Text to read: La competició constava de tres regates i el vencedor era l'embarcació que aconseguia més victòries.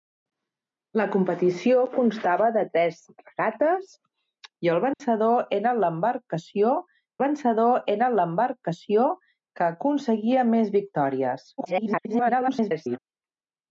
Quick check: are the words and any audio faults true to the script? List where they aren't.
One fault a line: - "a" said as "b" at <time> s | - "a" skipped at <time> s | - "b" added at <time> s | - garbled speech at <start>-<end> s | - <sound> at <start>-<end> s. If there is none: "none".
- dropout at 4.9-5.0 s
- "vencedor era l'embarcació" added at 7.2 s
- garbled speech at 11.6-13.0 s